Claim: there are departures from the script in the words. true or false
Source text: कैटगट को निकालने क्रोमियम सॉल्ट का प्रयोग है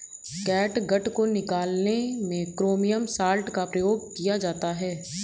true